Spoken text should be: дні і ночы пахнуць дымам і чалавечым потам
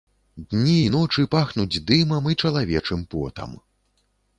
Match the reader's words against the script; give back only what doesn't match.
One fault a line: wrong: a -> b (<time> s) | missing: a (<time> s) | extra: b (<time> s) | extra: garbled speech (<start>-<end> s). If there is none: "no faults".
no faults